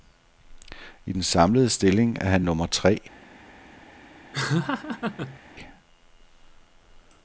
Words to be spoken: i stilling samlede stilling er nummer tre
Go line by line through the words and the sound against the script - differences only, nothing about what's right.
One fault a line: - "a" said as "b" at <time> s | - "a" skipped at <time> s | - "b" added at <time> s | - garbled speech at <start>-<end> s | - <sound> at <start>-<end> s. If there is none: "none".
- "stilling" said as "den" at 1.1 s
- "han" added at 2.3 s
- laugh at 4.3-5.4 s